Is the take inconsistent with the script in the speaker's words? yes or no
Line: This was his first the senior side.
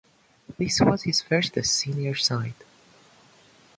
no